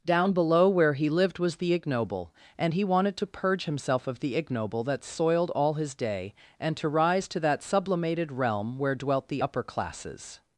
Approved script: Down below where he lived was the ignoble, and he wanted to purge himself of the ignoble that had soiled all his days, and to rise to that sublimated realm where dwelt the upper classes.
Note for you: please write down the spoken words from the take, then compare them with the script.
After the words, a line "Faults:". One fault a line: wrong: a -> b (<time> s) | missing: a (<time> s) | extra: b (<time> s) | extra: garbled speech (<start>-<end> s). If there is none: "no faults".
Down below where he lived was the ignoble, and he wanted to purge himself of the ignoble that soiled all his day, and to rise to that sublimated realm where dwelt the upper classes.
Faults:
missing: had (5.0 s)
wrong: days -> day (5.9 s)